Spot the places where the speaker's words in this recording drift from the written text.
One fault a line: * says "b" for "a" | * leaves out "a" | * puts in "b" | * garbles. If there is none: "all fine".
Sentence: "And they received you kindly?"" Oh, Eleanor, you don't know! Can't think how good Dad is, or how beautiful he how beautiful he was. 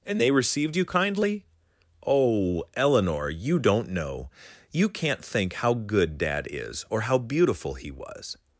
* puts in "You"
* leaves out "how beautiful he"